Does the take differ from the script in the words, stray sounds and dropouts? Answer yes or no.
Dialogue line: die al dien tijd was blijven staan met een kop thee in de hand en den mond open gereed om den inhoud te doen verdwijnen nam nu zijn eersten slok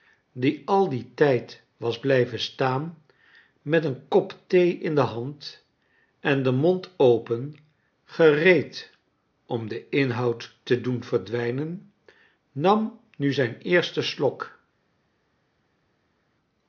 no